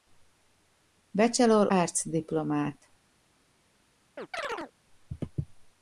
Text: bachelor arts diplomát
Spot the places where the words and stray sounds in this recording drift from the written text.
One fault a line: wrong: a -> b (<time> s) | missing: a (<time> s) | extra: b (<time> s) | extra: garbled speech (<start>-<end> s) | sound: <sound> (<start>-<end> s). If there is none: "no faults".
sound: chirp (4.2-4.7 s)